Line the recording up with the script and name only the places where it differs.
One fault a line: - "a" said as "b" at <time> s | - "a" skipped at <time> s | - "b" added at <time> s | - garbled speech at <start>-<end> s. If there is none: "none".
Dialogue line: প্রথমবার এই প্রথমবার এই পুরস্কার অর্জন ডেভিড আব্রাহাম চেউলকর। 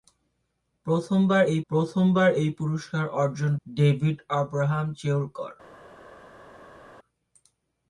none